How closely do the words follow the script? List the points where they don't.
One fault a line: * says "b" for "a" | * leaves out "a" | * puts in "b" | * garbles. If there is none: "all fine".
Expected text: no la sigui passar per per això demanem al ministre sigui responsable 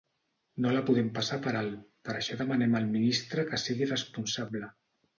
* says "podem" for "sigui"
* puts in "alt"
* puts in "que"